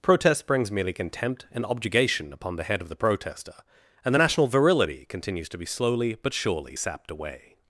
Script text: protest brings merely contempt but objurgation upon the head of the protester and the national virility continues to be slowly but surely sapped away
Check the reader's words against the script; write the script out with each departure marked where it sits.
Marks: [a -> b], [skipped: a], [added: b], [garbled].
protest brings merely contempt [but -> and] objurgation upon the head of the protester and the national virility continues to be slowly but surely sapped away